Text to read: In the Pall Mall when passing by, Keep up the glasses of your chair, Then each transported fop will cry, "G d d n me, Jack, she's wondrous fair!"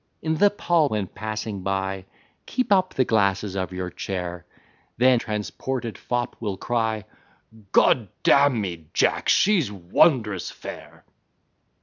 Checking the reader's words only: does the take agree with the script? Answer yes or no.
no